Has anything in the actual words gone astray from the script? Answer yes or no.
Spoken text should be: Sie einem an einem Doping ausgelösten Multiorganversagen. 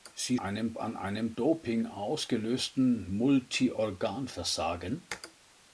no